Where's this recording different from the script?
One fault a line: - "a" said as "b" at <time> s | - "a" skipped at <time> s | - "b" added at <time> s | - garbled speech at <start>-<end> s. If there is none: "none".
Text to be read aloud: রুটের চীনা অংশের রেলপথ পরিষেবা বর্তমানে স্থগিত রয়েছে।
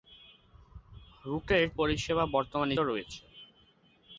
- "চীনা অংশের রেলপথ" skipped at 1.6 s
- "স্থগিত" skipped at 2.8 s